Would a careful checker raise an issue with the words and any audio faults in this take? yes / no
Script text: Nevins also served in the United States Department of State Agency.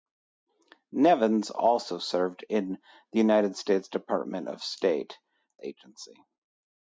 no